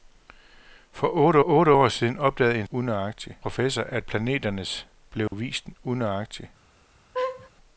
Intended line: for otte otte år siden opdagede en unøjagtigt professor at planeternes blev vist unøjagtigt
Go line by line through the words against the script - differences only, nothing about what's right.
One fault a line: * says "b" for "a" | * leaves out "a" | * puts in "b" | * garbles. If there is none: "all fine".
all fine